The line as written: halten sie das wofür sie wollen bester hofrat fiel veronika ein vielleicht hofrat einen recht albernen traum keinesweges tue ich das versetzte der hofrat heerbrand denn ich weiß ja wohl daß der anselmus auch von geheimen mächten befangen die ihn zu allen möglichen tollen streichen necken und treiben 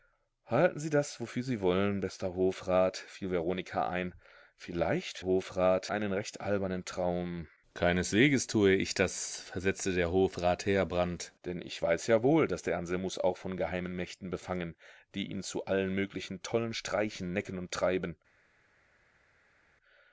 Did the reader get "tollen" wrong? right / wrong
right